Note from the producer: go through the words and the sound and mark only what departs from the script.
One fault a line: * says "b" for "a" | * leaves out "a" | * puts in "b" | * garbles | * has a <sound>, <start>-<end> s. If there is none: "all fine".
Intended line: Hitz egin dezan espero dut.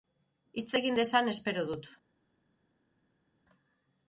all fine